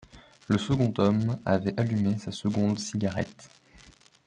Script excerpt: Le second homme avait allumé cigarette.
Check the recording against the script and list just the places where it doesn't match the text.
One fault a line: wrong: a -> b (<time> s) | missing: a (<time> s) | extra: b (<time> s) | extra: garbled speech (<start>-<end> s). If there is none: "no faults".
extra: sa seconde (2.2 s)